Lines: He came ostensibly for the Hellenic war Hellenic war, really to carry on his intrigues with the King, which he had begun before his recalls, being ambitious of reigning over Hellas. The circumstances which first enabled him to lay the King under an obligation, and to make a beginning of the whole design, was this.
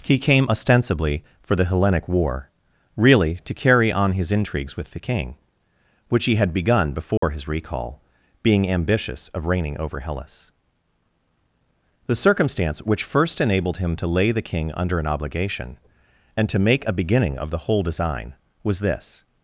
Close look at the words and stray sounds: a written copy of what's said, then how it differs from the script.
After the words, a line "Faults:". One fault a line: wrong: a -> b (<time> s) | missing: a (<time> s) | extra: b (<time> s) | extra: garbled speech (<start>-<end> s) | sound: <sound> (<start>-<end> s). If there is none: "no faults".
He came ostensibly for the Hellenic war, really to carry on his intrigues with the King, which he had begun before his recall, being ambitious of reigning over Hellas. The circumstance which first enabled him to lay the King under an obligation, and to make a beginning of the whole design, was this.
Faults:
missing: Hellenic war (2.5 s)
sound: dropout (7.2-7.2 s)
wrong: recalls -> recall (7.5 s)
wrong: circumstances -> circumstance (12.2 s)